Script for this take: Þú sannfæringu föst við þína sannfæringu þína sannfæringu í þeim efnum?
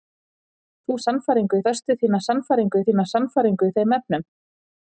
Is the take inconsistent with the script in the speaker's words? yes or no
no